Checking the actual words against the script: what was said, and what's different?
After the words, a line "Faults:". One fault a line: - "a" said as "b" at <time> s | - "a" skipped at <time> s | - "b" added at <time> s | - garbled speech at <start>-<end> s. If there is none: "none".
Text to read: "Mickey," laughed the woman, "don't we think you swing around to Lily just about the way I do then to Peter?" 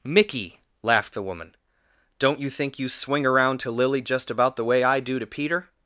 "Mickey," laughed the woman, "don't you think you swing around to Lily just about the way I do to Peter?"
Faults:
- "we" said as "you" at 2.4 s
- "then" skipped at 5.2 s